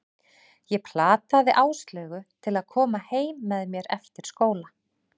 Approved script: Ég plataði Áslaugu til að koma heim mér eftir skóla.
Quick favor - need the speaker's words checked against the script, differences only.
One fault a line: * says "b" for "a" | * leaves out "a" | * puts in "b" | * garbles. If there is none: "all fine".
* puts in "með"